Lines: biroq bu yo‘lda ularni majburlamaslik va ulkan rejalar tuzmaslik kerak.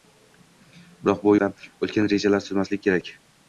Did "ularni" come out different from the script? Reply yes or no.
yes